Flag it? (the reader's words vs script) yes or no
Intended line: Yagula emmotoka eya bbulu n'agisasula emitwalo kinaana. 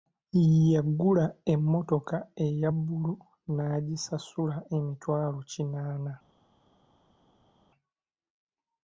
no